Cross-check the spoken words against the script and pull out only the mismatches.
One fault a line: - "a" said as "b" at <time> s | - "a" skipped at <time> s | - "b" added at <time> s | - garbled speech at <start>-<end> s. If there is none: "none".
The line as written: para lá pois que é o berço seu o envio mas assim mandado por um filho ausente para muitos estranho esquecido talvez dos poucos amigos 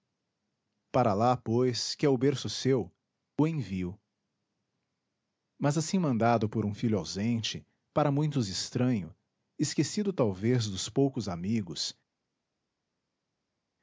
none